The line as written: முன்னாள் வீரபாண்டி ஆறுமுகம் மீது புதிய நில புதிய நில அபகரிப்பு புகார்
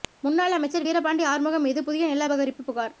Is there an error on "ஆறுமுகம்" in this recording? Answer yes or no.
no